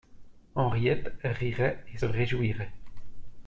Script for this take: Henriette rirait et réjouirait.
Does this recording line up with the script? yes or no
yes